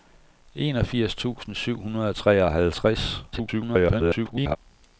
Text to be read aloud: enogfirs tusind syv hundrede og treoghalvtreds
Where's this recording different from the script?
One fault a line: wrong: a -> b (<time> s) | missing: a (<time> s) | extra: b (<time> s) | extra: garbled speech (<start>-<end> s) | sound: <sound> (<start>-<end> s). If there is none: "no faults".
extra: garbled speech (3.3-4.6 s)